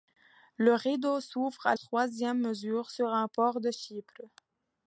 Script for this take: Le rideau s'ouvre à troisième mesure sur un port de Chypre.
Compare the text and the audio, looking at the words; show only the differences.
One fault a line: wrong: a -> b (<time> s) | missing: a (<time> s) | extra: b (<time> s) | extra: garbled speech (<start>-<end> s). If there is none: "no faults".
no faults